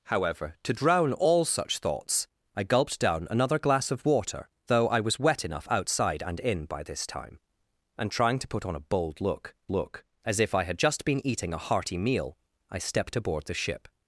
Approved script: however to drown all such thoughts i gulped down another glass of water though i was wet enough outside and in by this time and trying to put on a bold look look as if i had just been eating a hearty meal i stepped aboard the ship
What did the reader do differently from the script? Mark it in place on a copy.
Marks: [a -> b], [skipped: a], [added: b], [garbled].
however to drown all such thoughts i gulped down another glass of water though i was wet enough outside and in by this time and trying to put on a bold look look as if i had just been eating a hearty meal i stepped aboard the ship